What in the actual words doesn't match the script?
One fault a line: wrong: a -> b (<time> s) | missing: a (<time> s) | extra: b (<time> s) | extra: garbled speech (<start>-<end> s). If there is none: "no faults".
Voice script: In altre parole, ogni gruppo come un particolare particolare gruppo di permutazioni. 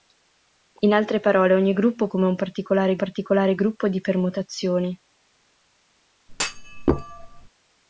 no faults